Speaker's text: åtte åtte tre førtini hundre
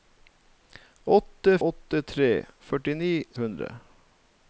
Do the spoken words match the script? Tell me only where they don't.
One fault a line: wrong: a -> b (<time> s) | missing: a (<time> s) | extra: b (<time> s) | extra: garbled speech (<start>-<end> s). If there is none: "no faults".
no faults